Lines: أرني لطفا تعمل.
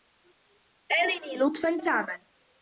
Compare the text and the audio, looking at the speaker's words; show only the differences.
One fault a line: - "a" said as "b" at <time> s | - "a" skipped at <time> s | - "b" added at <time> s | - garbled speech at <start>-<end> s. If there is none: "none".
none